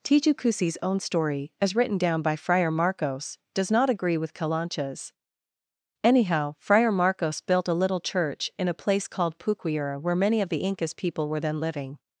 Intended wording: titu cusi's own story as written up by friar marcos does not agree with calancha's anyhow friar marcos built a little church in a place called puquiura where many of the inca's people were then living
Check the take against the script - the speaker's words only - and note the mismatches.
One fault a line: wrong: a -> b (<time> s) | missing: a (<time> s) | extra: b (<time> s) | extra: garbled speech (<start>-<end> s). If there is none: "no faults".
wrong: up -> down (2.0 s)